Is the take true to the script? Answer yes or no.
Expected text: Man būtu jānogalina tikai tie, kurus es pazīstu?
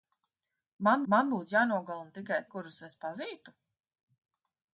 no